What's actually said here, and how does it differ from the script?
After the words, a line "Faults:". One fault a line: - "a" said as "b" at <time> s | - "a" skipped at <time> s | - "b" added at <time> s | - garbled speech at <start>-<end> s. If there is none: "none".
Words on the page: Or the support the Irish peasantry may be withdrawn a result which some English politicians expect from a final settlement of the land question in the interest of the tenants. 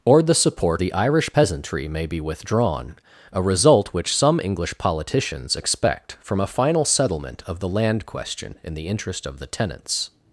Or the support the Irish peasantry may be withdrawn a result which some English politicians expect from a final settlement of the land question in the interest of the tenants.
Faults:
none